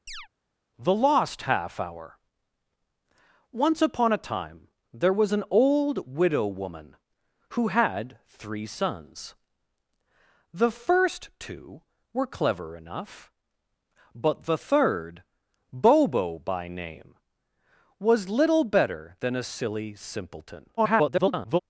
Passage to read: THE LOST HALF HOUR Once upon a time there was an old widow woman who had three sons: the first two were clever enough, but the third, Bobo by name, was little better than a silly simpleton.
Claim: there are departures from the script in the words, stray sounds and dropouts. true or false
true